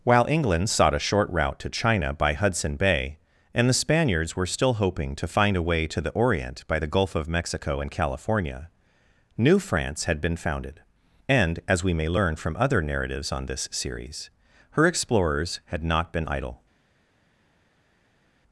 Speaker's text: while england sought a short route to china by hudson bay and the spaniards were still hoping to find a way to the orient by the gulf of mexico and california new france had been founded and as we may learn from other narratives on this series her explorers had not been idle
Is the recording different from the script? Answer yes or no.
no